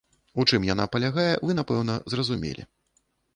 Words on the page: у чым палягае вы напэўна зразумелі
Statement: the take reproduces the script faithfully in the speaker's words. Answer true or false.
false